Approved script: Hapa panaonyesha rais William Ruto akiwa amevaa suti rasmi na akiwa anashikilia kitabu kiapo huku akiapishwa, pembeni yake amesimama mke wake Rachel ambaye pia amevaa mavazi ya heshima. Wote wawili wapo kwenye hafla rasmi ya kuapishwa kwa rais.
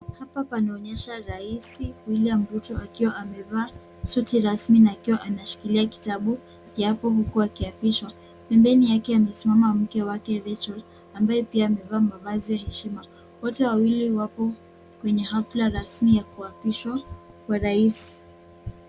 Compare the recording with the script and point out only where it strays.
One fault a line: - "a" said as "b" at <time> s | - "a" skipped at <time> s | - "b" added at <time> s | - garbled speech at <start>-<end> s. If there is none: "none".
none